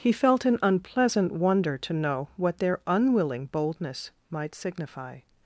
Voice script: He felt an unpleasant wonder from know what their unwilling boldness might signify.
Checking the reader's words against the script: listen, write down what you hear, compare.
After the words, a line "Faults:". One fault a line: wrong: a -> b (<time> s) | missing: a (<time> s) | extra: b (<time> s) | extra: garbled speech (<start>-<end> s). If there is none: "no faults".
He felt an unpleasant wonder to know what their unwilling boldness might signify.
Faults:
wrong: from -> to (1.8 s)